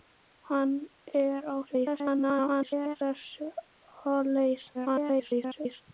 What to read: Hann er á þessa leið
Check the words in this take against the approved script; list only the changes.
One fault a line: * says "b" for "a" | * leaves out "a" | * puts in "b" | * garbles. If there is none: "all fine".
* garbles
* garbles